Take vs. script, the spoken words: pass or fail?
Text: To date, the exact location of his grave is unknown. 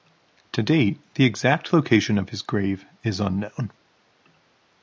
pass